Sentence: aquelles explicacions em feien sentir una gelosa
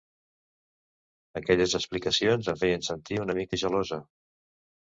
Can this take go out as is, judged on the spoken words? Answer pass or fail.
fail